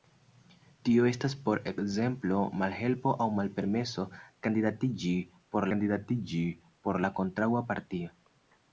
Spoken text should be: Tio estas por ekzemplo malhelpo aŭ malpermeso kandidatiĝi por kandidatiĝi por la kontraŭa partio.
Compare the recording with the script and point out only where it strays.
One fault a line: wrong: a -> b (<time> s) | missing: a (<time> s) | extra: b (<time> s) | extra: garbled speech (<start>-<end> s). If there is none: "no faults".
no faults